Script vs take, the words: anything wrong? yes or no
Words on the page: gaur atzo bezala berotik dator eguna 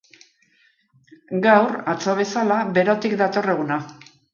no